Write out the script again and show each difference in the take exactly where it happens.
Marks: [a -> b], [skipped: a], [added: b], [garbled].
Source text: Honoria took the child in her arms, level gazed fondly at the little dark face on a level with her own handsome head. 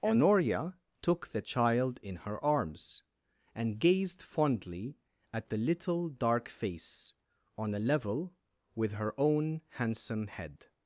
Honoria took the child in her arms, [level -> and] gazed fondly at the little dark face on a level with her own handsome head.